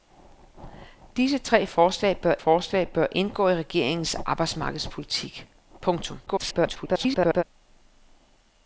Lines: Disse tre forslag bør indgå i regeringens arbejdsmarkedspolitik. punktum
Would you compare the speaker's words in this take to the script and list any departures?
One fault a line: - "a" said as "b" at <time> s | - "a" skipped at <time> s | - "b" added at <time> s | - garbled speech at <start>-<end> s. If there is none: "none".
- "forslag bør" added at 2.4 s
- garbled speech at 6.3-7.4 s